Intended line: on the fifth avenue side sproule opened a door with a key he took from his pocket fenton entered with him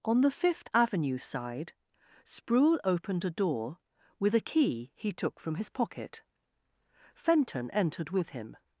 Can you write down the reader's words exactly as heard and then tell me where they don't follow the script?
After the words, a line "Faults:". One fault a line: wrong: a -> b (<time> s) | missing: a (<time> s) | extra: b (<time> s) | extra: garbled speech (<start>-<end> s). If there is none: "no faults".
on the fifth avenue side sproule opened a door with a key he took from his pocket fenton entered with him
Faults:
no faults